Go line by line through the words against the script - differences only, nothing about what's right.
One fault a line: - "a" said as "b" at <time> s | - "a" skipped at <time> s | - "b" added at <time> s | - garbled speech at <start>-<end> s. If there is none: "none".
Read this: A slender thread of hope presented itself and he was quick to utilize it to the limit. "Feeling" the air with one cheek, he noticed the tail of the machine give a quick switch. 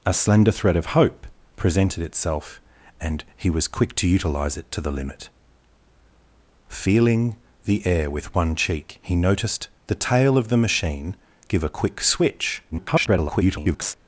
- garbled speech at 12.7-13.9 s